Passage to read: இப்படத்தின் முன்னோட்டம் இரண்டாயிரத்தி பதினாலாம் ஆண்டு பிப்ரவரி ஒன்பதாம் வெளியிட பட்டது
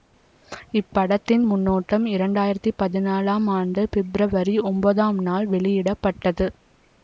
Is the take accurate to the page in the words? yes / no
no